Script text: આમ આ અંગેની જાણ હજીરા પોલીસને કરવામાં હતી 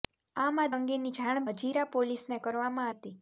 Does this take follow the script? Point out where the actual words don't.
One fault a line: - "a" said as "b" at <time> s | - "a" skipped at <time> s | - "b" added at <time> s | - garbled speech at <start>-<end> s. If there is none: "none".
none